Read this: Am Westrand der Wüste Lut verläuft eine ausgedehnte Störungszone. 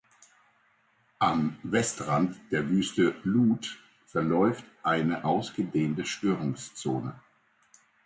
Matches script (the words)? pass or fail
pass